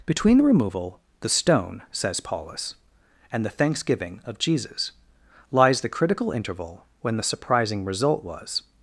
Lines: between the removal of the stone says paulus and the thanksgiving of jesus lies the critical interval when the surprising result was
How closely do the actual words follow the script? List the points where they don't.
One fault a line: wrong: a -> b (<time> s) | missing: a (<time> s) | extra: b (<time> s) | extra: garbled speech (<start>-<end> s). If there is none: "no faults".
missing: of (1.0 s)